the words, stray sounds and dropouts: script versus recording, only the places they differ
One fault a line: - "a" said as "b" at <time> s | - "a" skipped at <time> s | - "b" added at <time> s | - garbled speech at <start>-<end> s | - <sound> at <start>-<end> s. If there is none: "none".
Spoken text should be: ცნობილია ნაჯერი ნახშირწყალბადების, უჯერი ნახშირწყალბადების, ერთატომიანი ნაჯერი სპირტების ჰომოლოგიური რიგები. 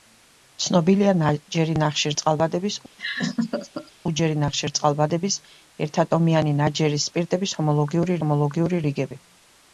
- laugh at 3.0-3.9 s
- "ჰომოლოგიური" added at 8.2 s